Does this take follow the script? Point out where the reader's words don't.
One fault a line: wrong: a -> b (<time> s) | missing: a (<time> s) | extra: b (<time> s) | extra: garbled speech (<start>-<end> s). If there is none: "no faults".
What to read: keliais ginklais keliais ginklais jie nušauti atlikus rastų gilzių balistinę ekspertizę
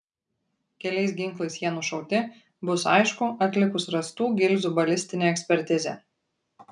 wrong: keliais ginklais jie nušauti -> jie nušauti bus aišku (1.6 s)